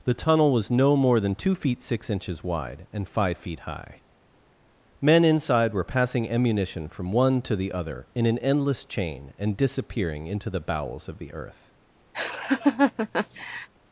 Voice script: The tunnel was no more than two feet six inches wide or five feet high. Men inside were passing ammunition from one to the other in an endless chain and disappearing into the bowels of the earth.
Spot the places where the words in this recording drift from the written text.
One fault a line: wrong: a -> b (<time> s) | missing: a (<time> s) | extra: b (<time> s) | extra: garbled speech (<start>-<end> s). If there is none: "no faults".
wrong: or -> and (2.9 s)